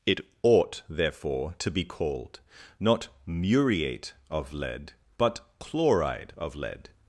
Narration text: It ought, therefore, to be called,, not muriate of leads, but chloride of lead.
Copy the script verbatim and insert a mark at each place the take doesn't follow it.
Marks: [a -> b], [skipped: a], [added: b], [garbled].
It ought, therefore, to be called,, not muriate of [leads, -> lead] but chloride of lead.